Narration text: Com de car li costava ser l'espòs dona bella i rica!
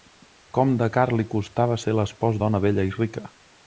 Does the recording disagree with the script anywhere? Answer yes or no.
no